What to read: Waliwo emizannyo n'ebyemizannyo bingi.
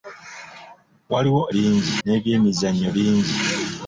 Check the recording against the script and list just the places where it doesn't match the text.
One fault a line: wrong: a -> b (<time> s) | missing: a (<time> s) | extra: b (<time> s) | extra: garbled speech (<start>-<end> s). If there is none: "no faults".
wrong: emizannyo -> bingi (1.5 s)